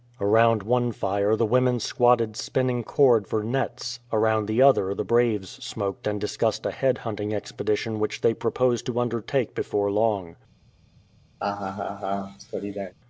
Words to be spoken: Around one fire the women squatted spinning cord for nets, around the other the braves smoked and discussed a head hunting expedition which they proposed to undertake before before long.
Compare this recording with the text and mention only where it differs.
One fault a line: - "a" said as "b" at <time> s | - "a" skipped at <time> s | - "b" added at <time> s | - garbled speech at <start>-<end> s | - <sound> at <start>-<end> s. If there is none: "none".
- "before" skipped at 9.9 s
- laugh at 11.4-12.9 s